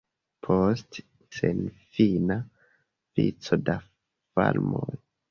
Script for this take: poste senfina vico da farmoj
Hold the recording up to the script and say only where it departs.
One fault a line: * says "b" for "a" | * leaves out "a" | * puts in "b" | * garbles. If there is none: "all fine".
all fine